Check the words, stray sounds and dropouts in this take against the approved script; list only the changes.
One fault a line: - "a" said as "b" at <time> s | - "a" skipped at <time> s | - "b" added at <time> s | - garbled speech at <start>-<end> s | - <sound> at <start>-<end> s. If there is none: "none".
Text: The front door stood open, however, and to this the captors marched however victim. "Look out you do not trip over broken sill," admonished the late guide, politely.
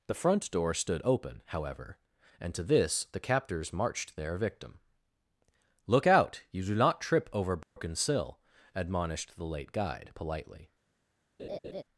- "however" said as "their" at 4.2 s
- dropout at 7.6-7.8 s
- laugh at 11.4-11.8 s